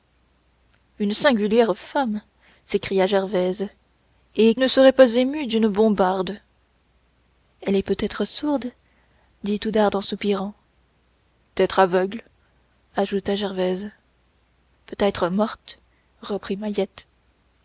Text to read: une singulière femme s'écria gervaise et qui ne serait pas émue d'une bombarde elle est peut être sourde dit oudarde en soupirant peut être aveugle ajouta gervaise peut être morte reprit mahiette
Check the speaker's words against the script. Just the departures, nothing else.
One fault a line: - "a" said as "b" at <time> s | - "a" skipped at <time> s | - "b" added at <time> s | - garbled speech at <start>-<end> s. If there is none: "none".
- "qui" skipped at 4.5 s
- "peut" skipped at 10.5 s